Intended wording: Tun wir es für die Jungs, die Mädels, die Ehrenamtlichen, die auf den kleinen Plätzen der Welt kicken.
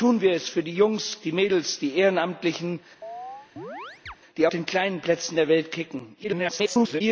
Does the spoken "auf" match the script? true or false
false